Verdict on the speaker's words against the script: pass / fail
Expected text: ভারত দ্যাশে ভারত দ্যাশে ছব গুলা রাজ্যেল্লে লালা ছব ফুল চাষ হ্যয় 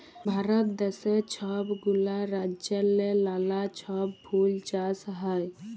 fail